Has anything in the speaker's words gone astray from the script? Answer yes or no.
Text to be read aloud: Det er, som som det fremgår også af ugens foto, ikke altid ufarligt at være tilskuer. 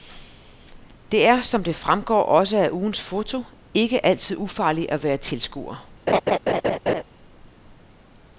yes